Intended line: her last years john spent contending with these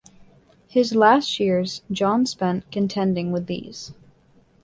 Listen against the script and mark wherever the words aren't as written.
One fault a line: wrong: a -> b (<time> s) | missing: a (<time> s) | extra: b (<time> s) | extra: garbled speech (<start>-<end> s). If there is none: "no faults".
wrong: her -> his (0.7 s)